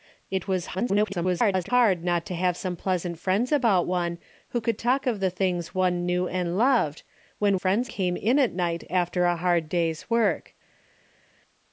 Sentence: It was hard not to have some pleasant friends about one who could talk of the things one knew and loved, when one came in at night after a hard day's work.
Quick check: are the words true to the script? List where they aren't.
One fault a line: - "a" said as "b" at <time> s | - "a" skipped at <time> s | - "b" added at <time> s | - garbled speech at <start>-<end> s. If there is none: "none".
- garbled speech at 0.7-1.7 s
- "one" said as "friends" at 7.6 s